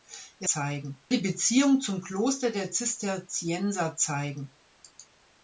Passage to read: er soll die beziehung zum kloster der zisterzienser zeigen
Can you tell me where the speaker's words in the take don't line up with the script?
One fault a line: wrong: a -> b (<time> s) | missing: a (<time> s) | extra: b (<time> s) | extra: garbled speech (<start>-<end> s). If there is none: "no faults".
wrong: soll -> zeigen (0.4 s)